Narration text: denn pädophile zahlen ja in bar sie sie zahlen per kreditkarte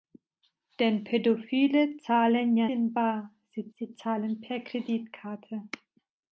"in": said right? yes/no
yes